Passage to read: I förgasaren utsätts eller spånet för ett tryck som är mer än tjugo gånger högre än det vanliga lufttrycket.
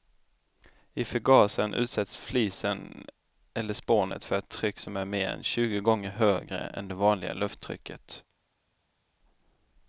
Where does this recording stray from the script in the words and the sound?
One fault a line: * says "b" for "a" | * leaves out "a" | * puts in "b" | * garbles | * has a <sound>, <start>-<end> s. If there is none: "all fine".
* puts in "flisen"